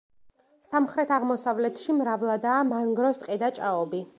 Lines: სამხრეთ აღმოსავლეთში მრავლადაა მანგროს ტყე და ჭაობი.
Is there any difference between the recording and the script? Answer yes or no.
no